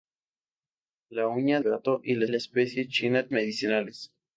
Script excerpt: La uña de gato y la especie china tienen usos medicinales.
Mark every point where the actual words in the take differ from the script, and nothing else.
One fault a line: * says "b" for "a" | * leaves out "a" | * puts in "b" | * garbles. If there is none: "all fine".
* leaves out "de"
* puts in "la"
* leaves out "tienen usos"